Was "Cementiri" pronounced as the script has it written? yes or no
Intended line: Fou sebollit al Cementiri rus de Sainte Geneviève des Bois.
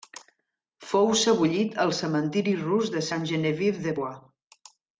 yes